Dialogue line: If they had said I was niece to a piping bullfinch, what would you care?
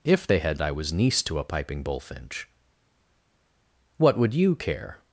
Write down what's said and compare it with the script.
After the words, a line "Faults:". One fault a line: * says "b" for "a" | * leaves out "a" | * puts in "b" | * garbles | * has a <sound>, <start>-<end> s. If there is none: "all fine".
If they had I was niece to a piping bullfinch, what would you care?
Faults:
* leaves out "said"